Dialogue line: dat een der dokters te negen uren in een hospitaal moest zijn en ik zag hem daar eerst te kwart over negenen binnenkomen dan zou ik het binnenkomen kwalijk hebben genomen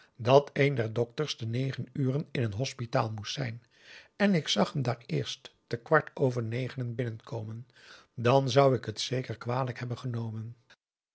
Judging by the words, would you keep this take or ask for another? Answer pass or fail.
fail